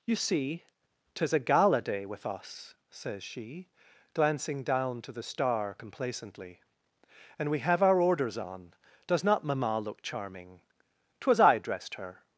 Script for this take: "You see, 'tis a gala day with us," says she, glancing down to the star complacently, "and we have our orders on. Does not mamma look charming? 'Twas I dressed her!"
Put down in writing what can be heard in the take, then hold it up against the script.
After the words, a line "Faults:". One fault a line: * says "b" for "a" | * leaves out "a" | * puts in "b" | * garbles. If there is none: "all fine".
"You see, 'tis a gala day with us," says she, glancing down to the star complacently, "and we have our orders on. Does not mamma look charming? 'Twas I dressed her!"
Faults:
all fine